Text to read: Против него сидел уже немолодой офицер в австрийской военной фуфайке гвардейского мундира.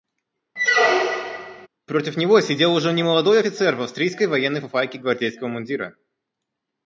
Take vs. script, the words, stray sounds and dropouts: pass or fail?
fail